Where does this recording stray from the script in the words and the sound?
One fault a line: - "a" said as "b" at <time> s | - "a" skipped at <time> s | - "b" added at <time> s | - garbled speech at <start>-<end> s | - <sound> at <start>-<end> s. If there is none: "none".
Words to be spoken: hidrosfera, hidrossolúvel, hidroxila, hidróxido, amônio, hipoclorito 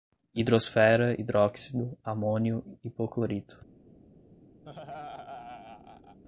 - "hidrossolúvel hidroxila" skipped at 1.1 s
- laugh at 4.6-6.2 s